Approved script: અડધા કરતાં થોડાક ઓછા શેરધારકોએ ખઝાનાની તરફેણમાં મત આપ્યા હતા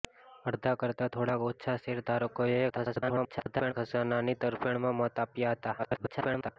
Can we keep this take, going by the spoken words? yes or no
no